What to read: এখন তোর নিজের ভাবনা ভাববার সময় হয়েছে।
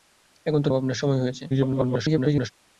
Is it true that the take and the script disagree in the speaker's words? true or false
true